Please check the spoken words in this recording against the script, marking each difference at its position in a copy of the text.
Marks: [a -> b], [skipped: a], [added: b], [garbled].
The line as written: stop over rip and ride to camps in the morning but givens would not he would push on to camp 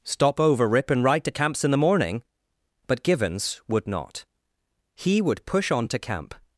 stop over rip and ride to camps in the morning but givens would not he would push on to camp